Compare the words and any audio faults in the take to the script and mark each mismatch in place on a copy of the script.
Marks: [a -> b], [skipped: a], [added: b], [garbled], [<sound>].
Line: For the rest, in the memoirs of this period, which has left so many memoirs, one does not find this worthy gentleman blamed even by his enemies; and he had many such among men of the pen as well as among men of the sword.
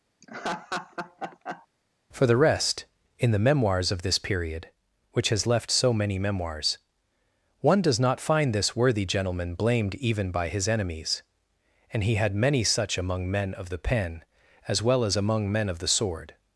[laugh] For the rest, in the memoirs of this period, which has left so many memoirs, one does not find this worthy gentleman blamed even by his enemies; and he had many such among men of the pen as well as among men of the sword.